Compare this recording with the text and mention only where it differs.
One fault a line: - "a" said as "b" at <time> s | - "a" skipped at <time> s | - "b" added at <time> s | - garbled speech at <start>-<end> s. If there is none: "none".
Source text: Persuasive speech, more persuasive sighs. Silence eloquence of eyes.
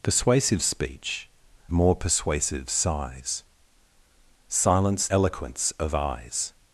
none